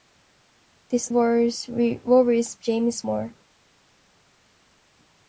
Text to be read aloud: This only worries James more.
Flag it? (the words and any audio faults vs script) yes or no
yes